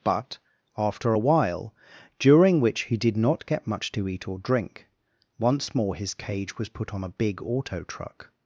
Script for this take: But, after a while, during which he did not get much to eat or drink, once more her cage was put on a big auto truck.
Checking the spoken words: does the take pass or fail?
fail